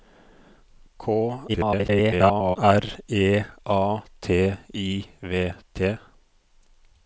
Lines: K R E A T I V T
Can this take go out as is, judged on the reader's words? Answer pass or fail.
fail